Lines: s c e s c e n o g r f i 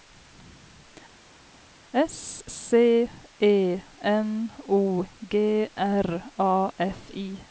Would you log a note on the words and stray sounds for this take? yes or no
yes